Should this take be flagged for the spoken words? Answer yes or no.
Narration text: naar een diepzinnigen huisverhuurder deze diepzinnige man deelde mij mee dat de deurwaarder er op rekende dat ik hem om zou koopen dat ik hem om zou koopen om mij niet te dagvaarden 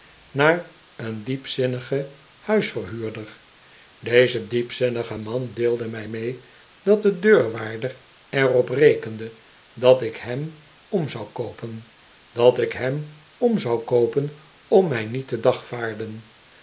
no